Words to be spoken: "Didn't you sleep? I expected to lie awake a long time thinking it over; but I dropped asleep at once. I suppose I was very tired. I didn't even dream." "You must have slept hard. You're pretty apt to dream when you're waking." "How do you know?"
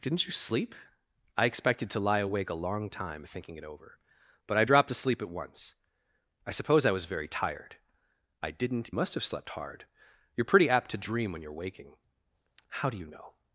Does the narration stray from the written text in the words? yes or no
yes